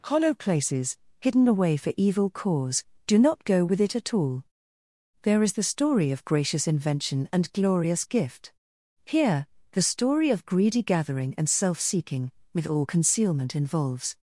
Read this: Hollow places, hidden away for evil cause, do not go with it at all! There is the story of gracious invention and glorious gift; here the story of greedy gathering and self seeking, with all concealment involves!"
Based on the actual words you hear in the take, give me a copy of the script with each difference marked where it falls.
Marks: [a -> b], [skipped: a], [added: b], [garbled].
Hollow places, hidden away for evil cause, do not go with it at all! There is the story of gracious invention and glorious gift; here the story of greedy gathering and self seeking, with all concealment involves!"